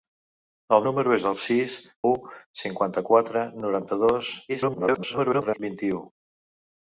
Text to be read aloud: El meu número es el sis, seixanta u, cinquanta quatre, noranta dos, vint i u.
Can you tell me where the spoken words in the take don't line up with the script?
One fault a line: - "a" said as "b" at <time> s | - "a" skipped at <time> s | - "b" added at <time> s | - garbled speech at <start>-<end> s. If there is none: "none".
- "meu" skipped at 0.9 s
- "seixanta" skipped at 1.8 s
- garbled speech at 4.5-5.6 s